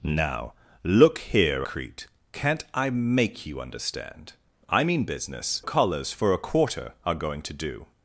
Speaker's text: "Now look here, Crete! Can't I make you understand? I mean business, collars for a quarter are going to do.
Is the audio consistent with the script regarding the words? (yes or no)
yes